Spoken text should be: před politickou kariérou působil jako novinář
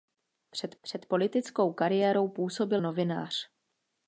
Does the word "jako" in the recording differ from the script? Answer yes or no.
yes